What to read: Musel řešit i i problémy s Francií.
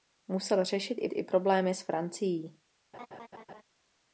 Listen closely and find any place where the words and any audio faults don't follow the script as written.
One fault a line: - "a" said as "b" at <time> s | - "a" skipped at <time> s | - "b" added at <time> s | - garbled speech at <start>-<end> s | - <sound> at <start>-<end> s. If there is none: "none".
- laugh at 2.9-3.6 s